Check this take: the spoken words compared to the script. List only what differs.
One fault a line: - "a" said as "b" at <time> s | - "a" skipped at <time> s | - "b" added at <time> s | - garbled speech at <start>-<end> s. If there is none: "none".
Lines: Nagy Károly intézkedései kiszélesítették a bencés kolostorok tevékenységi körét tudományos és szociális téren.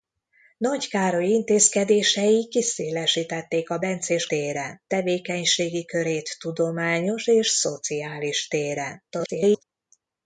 - "kolostorok" said as "téren" at 4.2 s
- garbled speech at 9.1-9.6 s